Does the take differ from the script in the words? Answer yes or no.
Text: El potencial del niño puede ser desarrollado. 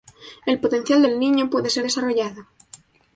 no